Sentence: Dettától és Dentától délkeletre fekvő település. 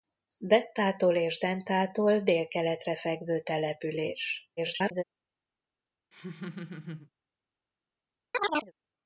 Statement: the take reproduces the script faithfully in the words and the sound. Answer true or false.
false